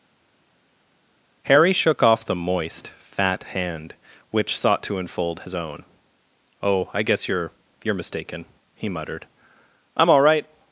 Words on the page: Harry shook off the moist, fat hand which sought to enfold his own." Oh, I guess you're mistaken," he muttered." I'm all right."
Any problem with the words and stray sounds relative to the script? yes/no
yes